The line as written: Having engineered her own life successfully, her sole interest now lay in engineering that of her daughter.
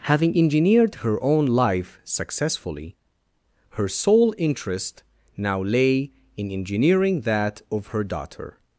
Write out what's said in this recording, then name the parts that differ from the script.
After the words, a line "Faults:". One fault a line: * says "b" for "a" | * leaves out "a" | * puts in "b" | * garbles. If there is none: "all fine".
Having engineered her own life successfully, her sole interest now lay in engineering that of her daughter.
Faults:
all fine